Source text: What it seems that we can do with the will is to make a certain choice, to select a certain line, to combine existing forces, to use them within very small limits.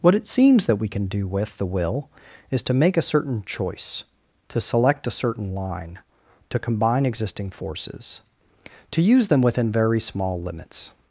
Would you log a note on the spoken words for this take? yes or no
no